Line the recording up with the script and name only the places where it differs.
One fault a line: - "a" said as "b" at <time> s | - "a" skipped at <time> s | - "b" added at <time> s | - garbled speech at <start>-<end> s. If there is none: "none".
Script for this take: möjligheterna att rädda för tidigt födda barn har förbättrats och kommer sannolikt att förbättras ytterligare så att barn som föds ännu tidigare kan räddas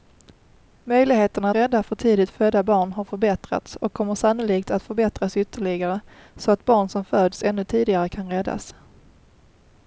- "att" skipped at 1.5 s